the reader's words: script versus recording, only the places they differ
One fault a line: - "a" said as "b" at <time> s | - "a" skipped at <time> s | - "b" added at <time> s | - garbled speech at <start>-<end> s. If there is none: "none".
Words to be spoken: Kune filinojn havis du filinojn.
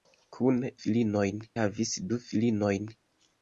none